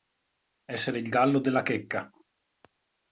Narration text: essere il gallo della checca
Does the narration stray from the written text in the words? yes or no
no